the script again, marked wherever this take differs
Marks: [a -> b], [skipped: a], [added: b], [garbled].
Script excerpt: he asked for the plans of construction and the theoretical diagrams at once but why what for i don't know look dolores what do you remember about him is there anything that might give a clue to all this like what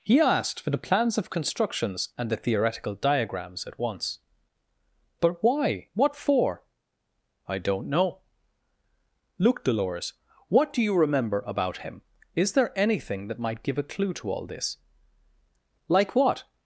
he asked for the plans of [construction -> constructions] and the theoretical diagrams at once but why what for i don't know look dolores what do you remember about him is there anything that might give a clue to all this like what